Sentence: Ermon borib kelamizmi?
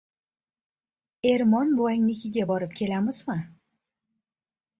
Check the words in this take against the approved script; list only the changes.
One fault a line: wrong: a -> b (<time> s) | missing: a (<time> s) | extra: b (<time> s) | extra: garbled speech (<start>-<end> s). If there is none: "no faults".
extra: buvangnikiga (1.8 s)